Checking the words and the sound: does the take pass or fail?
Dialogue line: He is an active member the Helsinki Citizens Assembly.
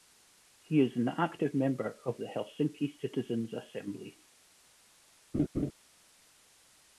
fail